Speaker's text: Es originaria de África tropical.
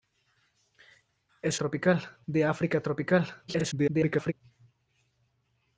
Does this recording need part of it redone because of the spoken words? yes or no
yes